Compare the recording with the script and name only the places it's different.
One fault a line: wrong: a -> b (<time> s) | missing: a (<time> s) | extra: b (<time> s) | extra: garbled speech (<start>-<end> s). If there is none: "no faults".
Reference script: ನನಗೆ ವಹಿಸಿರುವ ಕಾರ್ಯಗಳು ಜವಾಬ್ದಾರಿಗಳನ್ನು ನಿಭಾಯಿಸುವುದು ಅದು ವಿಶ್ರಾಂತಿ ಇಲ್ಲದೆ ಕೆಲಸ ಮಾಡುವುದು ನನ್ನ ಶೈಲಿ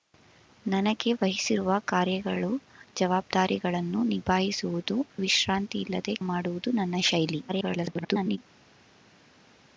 missing: ಅದು (5.0 s)
missing: ಕೆಲಸ (6.1 s)
extra: garbled speech (7.5-8.4 s)